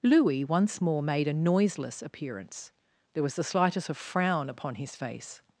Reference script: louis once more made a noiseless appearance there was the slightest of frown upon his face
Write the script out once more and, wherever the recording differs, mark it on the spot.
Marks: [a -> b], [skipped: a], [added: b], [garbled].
louis once more made a noiseless appearance there was the slightest of frown upon his face